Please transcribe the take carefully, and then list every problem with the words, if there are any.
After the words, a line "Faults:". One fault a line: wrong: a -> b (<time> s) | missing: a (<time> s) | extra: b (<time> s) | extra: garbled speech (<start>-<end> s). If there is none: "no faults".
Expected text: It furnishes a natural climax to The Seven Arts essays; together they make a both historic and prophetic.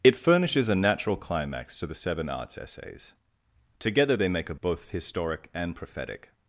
It furnishes a natural climax to The Seven Arts essays; together they make a both historic and prophetic.
Faults:
no faults